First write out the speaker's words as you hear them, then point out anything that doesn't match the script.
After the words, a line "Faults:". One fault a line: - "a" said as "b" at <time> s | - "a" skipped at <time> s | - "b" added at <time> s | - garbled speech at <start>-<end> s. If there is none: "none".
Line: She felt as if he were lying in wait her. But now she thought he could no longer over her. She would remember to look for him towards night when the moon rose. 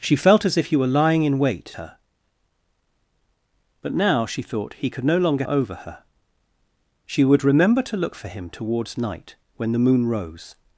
She felt as if he were lying in wait her. But now she thought he could no longer over her. She would remember to look for him towards night when the moon rose.
Faults:
none